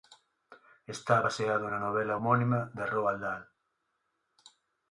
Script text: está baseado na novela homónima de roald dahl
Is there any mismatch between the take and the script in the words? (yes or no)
no